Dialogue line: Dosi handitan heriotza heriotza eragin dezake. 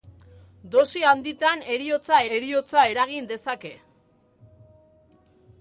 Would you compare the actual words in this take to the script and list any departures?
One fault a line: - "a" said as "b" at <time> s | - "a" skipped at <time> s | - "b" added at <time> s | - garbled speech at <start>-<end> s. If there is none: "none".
none